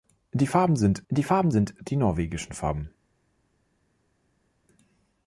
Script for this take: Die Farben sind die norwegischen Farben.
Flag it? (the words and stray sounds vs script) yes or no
yes